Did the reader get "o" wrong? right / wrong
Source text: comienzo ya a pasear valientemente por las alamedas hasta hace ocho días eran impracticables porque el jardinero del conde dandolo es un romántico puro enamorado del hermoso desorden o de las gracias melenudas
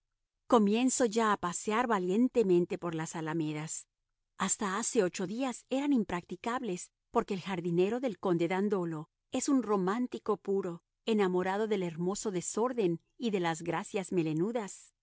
wrong